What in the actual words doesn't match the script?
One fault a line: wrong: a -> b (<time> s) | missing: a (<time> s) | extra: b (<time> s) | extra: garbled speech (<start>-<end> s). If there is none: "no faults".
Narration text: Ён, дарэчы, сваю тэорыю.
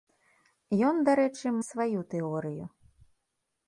no faults